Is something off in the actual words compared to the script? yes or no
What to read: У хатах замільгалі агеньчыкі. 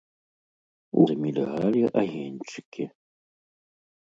yes